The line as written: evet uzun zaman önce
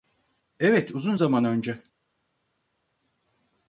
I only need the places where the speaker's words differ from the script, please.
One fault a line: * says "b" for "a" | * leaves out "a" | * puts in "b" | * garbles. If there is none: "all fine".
all fine